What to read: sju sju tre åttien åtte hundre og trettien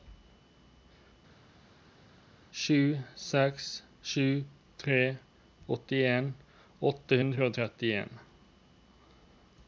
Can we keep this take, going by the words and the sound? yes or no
no